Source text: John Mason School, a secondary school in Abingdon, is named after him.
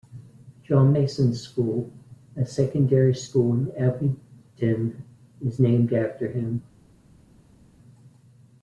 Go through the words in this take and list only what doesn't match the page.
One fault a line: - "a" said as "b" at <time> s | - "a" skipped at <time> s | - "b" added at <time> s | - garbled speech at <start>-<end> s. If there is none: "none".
none